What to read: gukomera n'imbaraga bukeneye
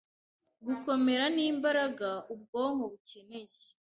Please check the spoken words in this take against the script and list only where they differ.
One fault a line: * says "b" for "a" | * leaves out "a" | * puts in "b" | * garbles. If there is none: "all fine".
* puts in "ubwonko"